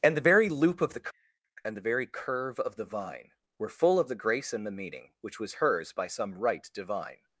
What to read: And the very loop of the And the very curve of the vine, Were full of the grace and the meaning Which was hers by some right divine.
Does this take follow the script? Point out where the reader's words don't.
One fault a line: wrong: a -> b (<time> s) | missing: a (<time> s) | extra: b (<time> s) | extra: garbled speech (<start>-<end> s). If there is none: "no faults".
no faults